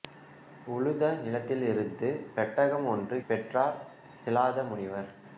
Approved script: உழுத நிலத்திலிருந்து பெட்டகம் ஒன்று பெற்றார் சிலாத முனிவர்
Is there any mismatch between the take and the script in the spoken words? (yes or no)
no